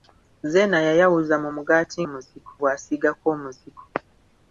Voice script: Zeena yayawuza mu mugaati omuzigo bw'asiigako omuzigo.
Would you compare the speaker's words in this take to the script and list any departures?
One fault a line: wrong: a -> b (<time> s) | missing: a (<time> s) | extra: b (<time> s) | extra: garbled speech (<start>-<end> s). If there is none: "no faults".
no faults